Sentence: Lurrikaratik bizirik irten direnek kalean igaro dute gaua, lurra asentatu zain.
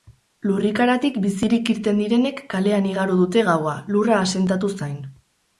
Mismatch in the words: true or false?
false